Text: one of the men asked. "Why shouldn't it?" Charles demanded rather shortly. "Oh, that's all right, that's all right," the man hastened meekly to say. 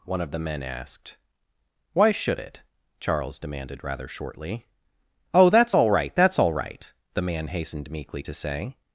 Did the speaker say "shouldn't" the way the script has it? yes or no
no